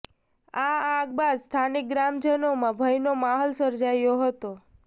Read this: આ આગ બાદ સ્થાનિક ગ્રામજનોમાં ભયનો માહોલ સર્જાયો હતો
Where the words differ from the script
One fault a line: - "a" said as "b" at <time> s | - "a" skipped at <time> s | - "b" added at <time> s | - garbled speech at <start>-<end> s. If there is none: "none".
none